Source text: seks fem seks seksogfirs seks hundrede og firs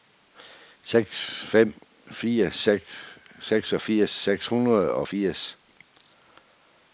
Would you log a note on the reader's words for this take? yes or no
yes